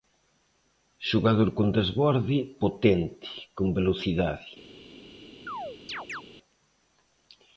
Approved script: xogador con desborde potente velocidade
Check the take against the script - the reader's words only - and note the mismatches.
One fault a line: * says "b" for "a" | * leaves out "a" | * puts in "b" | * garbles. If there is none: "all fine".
* puts in "con"